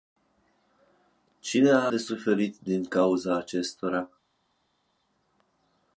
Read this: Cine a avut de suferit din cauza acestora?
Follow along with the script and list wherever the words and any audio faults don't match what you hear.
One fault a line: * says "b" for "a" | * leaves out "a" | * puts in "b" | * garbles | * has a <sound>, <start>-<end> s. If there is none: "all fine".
* leaves out "avut"